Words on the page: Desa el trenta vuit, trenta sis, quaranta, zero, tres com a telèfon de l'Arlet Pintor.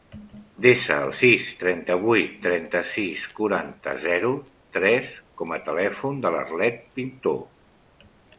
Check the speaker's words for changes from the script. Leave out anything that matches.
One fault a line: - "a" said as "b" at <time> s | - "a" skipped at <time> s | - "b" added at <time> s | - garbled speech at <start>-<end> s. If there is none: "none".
- "sis" added at 1.2 s